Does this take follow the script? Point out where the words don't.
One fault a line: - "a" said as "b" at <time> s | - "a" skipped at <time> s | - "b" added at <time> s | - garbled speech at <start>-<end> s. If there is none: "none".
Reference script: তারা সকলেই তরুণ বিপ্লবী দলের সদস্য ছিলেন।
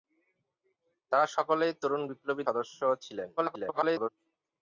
- "দলের" skipped at 2.4 s
- garbled speech at 3.4-4.1 s